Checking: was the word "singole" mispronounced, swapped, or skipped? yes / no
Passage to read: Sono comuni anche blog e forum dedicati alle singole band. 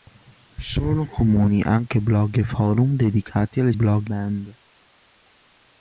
yes